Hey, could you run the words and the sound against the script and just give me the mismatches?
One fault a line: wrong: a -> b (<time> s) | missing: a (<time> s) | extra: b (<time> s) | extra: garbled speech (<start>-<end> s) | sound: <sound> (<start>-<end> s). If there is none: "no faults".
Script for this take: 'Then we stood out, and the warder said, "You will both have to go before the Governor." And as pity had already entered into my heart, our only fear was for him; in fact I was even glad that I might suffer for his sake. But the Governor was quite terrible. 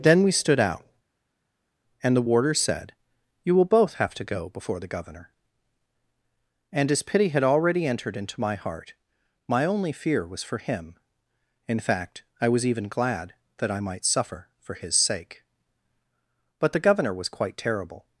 wrong: our -> my (9.5 s)